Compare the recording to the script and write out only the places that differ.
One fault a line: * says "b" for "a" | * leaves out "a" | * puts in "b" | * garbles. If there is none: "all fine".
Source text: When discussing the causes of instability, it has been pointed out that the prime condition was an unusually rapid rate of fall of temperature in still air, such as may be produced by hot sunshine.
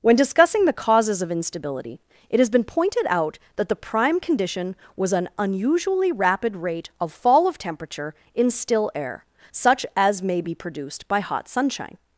all fine